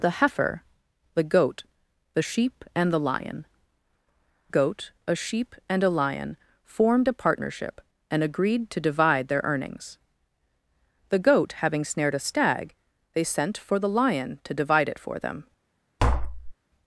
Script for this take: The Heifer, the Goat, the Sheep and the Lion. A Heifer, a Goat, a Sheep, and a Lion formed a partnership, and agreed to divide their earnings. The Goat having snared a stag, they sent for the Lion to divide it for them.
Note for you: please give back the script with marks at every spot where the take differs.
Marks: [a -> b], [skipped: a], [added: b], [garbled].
The Heifer, the Goat, the Sheep and the Lion. [skipped: A Heifer, a] Goat, a Sheep, and a Lion formed a partnership, and agreed to divide their earnings. The Goat having snared a stag, they sent for the Lion to divide it for them.